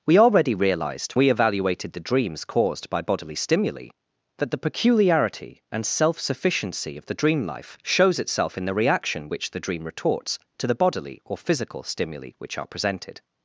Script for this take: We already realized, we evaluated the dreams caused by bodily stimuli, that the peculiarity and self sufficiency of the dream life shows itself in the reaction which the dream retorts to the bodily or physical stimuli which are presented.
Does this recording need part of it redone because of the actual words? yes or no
no